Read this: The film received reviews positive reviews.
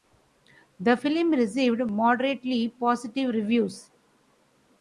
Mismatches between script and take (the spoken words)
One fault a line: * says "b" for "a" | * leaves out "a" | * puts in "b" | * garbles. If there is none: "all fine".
* says "moderately" for "reviews"